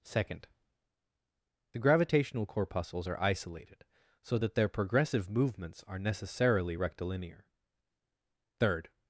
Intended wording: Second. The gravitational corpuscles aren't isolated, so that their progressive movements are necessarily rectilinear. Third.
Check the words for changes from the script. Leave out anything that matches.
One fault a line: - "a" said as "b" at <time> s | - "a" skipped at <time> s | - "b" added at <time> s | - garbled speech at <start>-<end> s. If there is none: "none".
- "aren't" said as "are" at 3.0 s